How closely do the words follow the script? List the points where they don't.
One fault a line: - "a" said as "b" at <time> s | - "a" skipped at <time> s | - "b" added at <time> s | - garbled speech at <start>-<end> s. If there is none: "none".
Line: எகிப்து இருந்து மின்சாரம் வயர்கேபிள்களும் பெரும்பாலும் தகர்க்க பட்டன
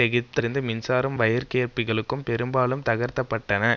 none